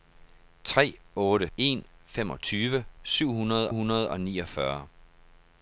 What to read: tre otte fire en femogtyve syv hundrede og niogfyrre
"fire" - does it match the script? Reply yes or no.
no